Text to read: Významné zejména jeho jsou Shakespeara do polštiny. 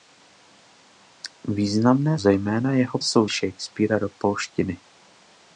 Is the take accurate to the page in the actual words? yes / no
yes